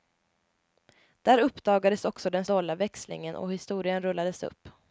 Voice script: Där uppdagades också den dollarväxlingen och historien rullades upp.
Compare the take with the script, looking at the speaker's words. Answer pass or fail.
pass